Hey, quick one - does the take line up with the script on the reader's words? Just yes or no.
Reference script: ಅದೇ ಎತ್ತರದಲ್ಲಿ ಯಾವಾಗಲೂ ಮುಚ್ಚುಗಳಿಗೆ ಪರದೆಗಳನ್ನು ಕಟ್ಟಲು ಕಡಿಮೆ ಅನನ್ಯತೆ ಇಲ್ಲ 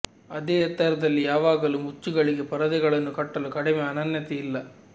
yes